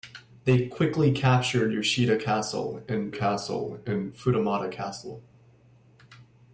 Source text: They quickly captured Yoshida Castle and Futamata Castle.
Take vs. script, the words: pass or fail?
fail